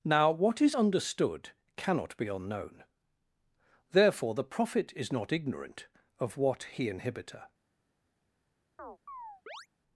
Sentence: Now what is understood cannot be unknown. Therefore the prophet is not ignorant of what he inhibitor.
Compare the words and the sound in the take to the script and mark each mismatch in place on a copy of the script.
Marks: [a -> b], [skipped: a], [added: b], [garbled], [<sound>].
Now what is understood cannot be unknown. Therefore the prophet is not ignorant of what he inhibitor. [chirp]